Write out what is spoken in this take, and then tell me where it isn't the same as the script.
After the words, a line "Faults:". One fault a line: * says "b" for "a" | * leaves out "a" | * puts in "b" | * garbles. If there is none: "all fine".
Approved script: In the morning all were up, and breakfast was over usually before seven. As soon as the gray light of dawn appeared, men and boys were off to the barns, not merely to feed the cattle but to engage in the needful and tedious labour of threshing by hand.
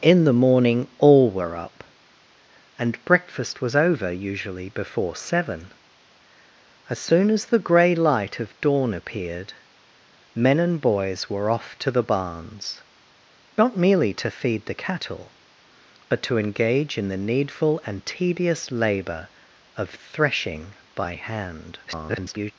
In the morning all were up, and breakfast was over usually before seven. As soon as the gray light of dawn appeared, men and boys were off to the barns, not merely to feed the cattle but to engage in the needful and tedious labour of threshing by hand. [garbled]
Faults:
* garbles